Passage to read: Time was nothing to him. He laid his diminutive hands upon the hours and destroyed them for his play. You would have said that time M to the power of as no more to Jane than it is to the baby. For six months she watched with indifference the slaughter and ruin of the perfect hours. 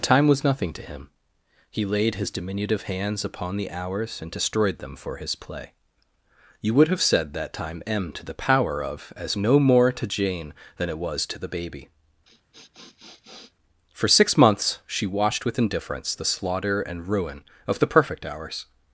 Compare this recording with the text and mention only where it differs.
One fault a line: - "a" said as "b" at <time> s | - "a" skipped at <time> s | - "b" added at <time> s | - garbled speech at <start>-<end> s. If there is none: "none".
- "is" said as "was" at 11.0 s